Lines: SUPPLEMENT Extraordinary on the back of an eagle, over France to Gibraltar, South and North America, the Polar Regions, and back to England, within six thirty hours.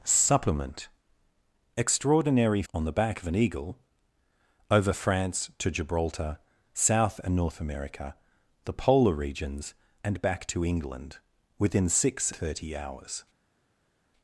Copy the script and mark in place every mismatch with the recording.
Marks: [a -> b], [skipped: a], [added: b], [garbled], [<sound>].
SUPPLEMENT Extraordinary on the back of an eagle, over France to Gibraltar, South and North America, the Polar Regions, and back to England, within six thirty hours.